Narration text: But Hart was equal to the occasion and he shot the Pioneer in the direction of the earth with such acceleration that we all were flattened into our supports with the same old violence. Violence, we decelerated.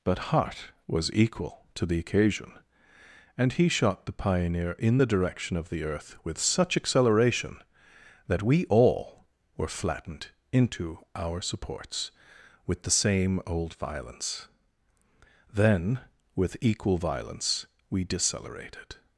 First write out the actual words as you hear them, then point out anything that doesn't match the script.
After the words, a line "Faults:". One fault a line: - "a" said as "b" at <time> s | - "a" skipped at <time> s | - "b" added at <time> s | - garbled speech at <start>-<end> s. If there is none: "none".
But Hart was equal to the occasion and he shot the Pioneer in the direction of the earth with such acceleration that we all were flattened into our supports with the same old violence. Then, with equal violence, we decelerated.
Faults:
- "Then with equal" added at 15.5 s